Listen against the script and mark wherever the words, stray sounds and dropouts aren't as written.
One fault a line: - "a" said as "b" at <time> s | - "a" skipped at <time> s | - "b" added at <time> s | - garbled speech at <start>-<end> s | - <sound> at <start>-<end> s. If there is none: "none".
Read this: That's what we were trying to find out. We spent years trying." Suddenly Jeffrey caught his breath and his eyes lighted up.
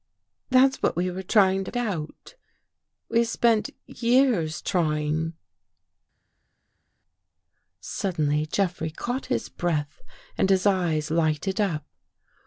- "find" skipped at 1.7 s